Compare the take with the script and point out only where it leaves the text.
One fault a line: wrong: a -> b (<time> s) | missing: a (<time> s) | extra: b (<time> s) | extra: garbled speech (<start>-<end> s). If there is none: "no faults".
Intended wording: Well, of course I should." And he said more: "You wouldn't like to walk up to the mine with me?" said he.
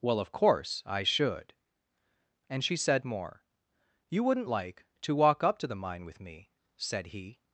wrong: he -> she (2.6 s)